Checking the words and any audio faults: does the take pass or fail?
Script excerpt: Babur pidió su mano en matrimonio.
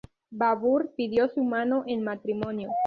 pass